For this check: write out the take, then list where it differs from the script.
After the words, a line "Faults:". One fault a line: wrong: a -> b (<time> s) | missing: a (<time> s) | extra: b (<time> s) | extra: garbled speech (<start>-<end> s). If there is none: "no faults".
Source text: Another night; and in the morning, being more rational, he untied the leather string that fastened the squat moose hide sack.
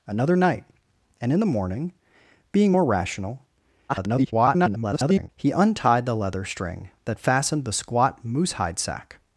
Another night; and in the morning, being more rational, [garbled] he untied the leather string that fastened the squat moose hide sack.
Faults:
extra: garbled speech (3.9-5.3 s)